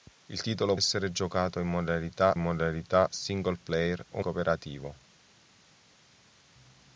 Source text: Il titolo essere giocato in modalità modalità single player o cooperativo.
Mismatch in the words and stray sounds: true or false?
false